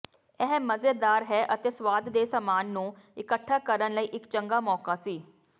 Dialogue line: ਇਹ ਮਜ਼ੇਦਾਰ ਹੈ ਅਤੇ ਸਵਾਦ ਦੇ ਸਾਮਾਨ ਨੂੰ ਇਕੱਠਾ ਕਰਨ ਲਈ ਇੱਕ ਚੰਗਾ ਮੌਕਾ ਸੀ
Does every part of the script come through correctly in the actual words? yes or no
yes